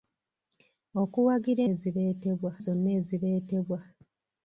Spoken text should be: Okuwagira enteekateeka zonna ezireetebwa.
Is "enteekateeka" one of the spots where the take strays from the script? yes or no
yes